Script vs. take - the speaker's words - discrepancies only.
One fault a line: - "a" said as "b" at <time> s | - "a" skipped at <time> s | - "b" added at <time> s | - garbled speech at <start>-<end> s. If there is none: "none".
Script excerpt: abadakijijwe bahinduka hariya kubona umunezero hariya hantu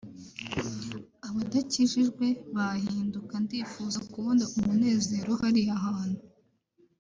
- "hariya" said as "ndifuza" at 3.4 s